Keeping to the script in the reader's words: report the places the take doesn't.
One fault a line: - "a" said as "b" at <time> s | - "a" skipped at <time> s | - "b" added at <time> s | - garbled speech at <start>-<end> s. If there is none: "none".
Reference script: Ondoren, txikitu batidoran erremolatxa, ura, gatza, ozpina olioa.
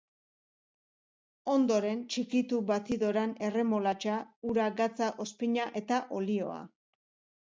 - "eta" added at 5.8 s